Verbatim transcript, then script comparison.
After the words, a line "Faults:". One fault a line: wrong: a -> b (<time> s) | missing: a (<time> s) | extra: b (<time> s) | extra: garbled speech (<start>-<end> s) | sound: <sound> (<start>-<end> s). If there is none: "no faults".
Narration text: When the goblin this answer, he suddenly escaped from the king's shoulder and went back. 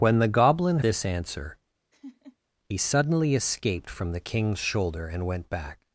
When the goblin this answer, he suddenly escaped from the king's shoulder and went back.
Faults:
sound: laugh (1.9-2.4 s)